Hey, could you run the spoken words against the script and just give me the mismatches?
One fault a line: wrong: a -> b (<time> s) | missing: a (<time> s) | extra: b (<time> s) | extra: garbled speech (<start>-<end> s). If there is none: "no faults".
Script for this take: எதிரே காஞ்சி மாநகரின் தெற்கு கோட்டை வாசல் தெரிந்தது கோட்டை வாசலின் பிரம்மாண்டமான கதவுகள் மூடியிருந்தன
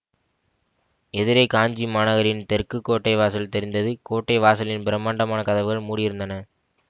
no faults